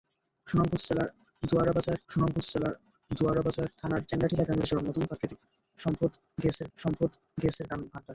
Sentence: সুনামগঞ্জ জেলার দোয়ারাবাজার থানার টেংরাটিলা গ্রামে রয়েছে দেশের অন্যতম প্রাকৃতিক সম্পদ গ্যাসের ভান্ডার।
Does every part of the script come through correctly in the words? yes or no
no